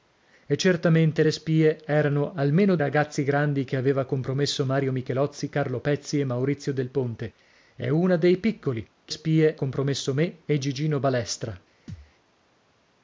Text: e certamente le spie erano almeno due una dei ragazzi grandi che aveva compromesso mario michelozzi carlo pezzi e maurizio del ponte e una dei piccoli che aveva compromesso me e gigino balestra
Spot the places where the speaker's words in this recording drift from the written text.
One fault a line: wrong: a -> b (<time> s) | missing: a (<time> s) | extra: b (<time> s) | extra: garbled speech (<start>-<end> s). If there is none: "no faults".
missing: due una dei (2.8 s)
wrong: aveva -> spie (9.1 s)